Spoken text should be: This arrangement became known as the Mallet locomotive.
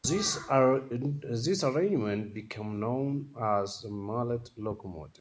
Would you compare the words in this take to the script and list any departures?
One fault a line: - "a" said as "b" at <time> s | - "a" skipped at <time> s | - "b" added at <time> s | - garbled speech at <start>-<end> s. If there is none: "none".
none